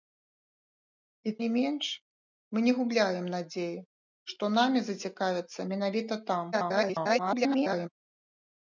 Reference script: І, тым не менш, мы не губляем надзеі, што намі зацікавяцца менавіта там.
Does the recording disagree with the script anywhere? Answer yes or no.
yes